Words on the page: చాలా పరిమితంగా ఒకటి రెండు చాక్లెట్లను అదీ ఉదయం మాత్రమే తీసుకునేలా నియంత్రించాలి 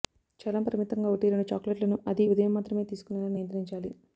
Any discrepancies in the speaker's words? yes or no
no